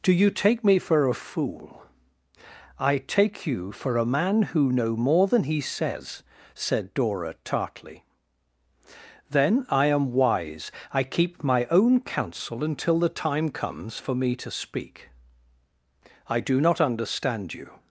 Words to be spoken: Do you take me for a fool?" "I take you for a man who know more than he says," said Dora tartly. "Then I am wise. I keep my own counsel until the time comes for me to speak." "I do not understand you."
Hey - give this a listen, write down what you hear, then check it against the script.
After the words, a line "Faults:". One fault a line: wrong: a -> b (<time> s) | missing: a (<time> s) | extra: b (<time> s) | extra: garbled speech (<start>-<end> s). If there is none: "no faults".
Do you take me for a fool?" "I take you for a man who know more than he says," said Dora tartly. "Then I am wise. I keep my own counsel until the time comes for me to speak." "I do not understand you."
Faults:
no faults